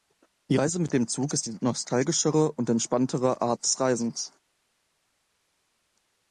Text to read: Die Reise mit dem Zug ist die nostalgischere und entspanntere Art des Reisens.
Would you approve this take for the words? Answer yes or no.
yes